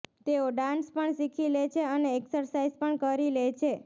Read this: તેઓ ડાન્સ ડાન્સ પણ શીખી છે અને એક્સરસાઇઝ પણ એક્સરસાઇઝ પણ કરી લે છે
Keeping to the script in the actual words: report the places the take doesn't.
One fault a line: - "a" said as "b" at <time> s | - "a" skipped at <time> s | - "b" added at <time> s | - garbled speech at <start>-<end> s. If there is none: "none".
- "ડાન્સ" skipped at 0.9 s
- "લે" added at 1.5 s
- "એક્સરસાઇઝ પણ" skipped at 3.0 s